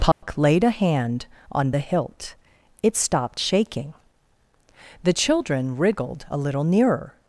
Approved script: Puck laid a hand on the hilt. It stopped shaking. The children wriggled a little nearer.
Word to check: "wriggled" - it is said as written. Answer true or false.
true